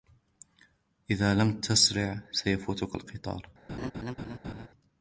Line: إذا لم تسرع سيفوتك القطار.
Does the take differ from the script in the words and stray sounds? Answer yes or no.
yes